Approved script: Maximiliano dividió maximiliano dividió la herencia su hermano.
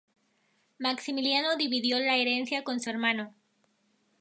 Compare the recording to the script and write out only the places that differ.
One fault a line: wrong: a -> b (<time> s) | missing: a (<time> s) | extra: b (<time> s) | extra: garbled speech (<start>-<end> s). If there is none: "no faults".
missing: maximiliano dividió (2.0 s)
extra: con (2.6 s)